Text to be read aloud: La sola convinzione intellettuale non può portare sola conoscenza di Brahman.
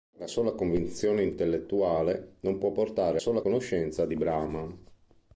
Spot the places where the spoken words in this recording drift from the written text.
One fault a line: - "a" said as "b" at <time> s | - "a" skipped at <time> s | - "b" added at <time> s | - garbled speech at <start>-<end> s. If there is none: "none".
none